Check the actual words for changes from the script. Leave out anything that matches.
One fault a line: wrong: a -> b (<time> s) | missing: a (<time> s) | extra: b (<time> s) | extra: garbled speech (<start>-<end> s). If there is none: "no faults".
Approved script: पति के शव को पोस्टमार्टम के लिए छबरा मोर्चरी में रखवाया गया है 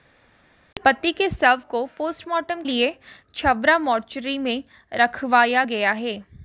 missing: के (2.6 s)